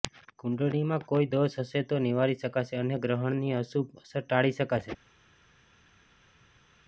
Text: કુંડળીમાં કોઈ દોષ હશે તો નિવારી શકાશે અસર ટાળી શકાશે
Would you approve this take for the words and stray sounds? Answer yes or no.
no